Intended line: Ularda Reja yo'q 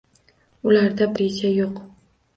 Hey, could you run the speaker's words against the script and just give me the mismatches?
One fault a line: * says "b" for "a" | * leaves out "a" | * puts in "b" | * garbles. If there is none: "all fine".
all fine